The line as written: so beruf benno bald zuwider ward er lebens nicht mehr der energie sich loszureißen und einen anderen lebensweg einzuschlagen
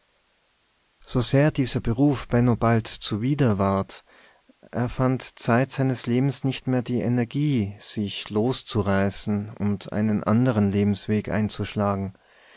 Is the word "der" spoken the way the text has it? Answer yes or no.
no